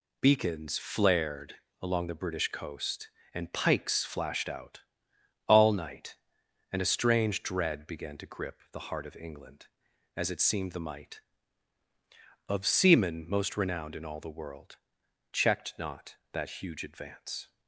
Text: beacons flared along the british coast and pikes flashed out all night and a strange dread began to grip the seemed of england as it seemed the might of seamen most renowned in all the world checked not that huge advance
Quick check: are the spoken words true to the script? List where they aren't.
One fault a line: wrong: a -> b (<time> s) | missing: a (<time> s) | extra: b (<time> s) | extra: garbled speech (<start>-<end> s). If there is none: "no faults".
wrong: seemed -> heart (8.8 s)